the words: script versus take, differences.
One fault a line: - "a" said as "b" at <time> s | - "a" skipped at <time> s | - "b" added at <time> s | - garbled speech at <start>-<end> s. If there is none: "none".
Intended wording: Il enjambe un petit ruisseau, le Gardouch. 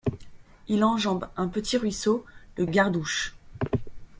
none